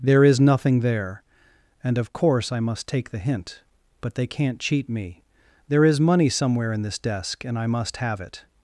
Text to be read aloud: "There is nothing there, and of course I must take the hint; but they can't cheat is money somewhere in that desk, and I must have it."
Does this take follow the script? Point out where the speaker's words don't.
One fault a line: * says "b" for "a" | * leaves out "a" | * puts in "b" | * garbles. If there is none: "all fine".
* puts in "me There"
* says "this" for "that"